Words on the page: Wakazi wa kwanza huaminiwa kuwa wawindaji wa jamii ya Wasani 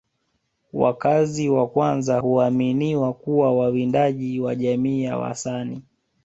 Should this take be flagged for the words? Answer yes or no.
no